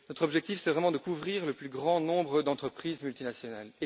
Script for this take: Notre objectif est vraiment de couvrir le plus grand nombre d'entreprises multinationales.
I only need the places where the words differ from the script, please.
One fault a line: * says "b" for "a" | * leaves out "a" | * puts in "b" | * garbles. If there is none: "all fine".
all fine